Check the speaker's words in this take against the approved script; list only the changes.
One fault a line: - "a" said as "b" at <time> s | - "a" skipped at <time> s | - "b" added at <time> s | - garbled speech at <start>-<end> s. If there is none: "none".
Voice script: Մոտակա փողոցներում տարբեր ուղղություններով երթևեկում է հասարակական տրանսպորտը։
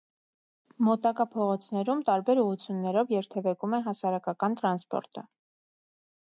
none